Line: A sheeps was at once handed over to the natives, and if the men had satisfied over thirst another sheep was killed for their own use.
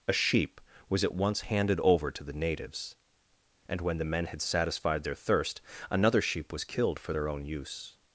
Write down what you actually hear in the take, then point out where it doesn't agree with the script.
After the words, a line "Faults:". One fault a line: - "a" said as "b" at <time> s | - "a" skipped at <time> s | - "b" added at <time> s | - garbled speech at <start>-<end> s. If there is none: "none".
A sheep was at once handed over to the natives, and when the men had satisfied their thirst another sheep was killed for their own use.
Faults:
- "sheeps" said as "sheep" at 0.1 s
- "if" said as "when" at 3.8 s
- "over" said as "their" at 5.0 s